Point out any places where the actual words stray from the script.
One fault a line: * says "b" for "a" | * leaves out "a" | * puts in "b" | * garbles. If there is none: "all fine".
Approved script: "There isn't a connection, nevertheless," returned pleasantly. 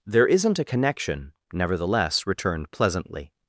all fine